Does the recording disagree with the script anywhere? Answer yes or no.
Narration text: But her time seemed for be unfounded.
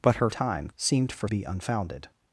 no